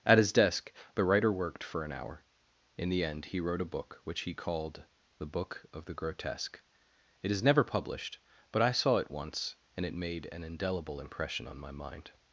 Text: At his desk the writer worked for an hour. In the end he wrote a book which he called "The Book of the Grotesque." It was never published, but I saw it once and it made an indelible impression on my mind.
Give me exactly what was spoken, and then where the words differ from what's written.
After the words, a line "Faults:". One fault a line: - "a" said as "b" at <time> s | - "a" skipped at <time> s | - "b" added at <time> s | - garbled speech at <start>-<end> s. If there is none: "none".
At his desk the writer worked for an hour. In the end he wrote a book which he called "The Book of the Grotesque." It is never published, but I saw it once and it made an indelible impression on my mind.
Faults:
- "was" said as "is" at 7.3 s